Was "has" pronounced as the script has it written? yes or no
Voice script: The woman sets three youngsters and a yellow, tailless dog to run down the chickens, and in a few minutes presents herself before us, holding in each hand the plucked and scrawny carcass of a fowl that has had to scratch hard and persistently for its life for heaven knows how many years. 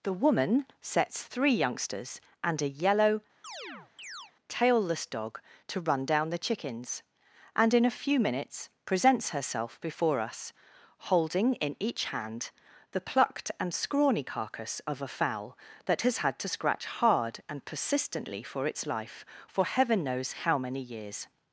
yes